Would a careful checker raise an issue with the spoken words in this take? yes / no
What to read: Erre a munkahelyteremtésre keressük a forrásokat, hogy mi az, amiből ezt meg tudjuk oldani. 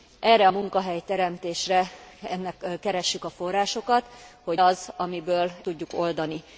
yes